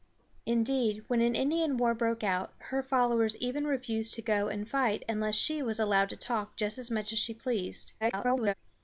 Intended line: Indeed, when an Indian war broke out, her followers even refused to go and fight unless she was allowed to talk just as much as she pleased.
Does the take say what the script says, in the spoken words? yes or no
no